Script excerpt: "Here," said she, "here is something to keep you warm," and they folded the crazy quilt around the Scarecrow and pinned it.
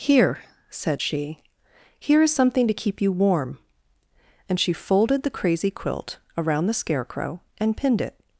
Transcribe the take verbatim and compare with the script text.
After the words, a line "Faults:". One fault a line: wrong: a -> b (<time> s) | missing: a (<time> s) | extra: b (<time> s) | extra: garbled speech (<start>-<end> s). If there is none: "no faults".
"Here," said she, "here is something to keep you warm," and she folded the crazy quilt around the Scarecrow and pinned it.
Faults:
wrong: they -> she (4.6 s)